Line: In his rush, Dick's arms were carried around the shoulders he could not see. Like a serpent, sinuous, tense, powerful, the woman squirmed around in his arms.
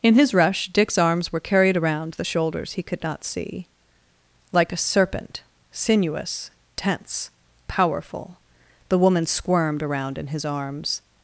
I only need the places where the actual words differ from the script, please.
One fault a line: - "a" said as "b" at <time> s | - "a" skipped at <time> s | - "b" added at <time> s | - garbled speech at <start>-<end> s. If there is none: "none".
none